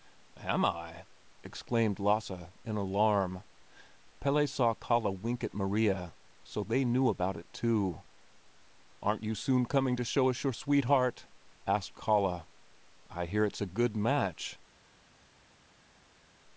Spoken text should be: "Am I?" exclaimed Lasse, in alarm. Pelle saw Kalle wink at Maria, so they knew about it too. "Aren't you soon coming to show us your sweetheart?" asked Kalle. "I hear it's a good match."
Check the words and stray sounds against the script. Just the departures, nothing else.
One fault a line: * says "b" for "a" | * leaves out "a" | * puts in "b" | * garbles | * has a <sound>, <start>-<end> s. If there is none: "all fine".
all fine